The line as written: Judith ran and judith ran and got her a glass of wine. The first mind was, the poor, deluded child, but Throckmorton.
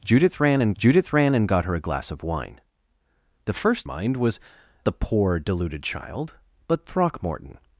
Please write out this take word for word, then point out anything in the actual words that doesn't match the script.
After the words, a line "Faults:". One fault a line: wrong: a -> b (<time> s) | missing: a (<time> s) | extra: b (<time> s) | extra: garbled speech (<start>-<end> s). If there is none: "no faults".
Judith ran and judith ran and got her a glass of wine. The first mind was, the poor, deluded child, but Throckmorton.
Faults:
no faults